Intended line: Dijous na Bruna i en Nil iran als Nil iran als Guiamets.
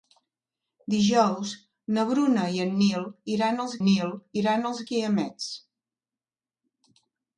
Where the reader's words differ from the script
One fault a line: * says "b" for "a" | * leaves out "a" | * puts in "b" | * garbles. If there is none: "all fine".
all fine